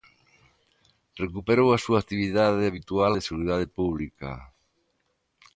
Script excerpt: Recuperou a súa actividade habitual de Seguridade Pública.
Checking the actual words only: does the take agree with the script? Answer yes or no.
yes